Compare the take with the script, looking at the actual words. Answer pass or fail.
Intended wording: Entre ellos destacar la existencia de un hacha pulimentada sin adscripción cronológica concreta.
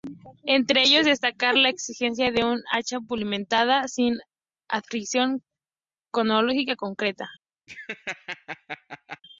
pass